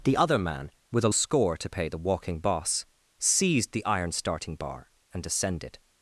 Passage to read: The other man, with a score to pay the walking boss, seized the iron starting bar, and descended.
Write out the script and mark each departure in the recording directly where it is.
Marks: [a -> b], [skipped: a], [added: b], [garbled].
The other man, with a score to pay the walking boss, seized the iron starting bar, and descended.